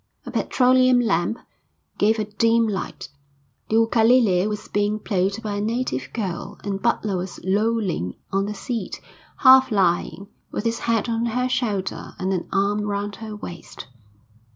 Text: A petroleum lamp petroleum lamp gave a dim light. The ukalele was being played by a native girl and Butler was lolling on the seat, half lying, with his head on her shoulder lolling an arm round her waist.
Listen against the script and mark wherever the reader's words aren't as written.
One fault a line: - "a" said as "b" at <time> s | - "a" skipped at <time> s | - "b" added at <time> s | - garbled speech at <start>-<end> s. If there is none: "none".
- "petroleum lamp" skipped at 1.4 s
- "lolling" said as "and" at 12.2 s